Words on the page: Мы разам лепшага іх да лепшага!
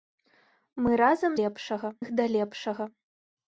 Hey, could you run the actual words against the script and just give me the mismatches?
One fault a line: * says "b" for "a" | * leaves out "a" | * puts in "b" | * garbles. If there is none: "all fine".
all fine